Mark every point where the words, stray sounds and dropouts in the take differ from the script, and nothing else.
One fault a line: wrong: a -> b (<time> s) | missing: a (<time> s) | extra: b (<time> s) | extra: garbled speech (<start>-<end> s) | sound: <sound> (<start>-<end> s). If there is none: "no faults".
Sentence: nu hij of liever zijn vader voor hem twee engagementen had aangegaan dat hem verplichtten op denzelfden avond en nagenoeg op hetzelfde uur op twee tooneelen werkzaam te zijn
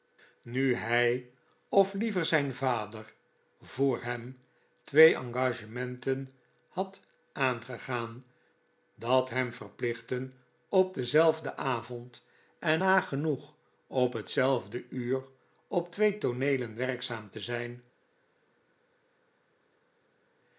no faults